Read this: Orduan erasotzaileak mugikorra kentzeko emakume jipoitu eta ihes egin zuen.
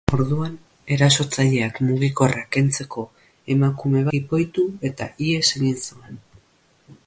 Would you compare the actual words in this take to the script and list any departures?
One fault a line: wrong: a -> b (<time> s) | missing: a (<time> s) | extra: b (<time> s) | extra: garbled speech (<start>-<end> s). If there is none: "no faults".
no faults